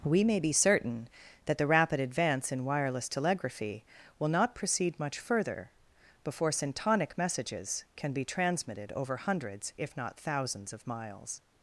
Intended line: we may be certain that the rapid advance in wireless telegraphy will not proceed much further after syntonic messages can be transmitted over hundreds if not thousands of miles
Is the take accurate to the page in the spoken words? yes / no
no